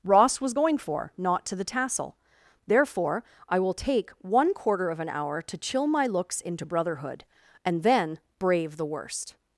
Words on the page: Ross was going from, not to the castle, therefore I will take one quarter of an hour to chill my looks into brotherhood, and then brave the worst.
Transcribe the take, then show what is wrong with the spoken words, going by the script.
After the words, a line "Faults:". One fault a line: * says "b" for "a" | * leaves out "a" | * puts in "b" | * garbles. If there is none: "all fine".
Ross was going for, not to the tassel, therefore I will take one quarter of an hour to chill my looks into brotherhood, and then brave the worst.
Faults:
* says "for" for "from"
* says "tassel" for "castle"